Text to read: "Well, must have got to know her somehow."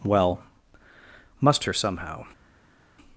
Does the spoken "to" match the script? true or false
false